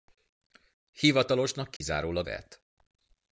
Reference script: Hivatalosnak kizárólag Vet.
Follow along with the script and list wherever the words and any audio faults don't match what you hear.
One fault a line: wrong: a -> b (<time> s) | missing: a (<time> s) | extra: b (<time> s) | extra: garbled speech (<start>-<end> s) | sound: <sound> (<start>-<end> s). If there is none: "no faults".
sound: dropout (1.8-1.8 s)